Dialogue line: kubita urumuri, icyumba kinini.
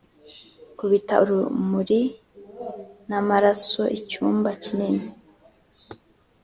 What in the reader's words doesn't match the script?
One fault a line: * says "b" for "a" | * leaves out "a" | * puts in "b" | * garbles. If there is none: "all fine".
* puts in "n'amaraso"